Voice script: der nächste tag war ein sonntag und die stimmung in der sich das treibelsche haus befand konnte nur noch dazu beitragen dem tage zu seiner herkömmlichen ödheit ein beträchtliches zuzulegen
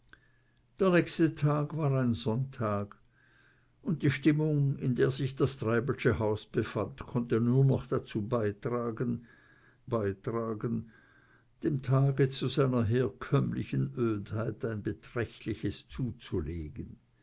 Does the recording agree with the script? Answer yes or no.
no